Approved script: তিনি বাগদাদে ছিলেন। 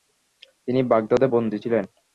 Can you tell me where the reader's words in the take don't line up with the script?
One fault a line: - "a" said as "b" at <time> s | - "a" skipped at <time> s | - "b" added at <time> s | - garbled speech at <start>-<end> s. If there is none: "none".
- "বন্দী" added at 1.2 s